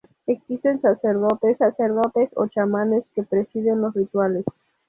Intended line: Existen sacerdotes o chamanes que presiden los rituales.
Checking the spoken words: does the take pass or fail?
fail